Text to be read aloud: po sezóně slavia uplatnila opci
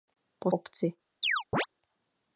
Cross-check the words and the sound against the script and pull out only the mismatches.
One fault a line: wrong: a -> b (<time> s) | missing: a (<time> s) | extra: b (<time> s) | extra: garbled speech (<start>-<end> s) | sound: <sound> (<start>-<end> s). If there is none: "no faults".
missing: sezóně slavia uplatnila (0.5 s)
sound: chirp (1.2-1.7 s)